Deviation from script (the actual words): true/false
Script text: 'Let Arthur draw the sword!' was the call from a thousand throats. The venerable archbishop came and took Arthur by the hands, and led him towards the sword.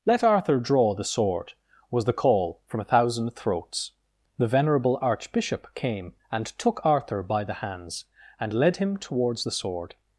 false